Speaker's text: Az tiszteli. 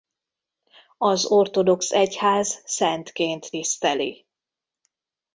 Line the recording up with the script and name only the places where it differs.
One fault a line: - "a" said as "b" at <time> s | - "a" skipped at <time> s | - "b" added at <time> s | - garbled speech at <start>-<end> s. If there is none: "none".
- "ortodox egyház szentként" added at 1.2 s